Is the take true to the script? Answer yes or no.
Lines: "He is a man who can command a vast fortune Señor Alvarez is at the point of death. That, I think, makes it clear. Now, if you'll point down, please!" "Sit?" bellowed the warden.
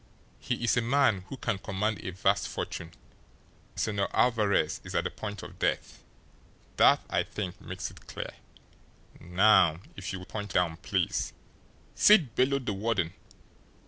yes